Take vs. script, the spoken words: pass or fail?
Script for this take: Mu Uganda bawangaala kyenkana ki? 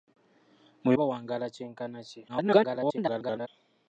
fail